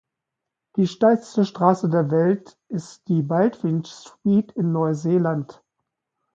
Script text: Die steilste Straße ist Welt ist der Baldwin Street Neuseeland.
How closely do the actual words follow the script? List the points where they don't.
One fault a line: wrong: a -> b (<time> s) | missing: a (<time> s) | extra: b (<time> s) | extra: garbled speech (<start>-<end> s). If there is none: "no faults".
wrong: ist -> der (1.9 s)
wrong: der -> die (3.1 s)
extra: in (4.5 s)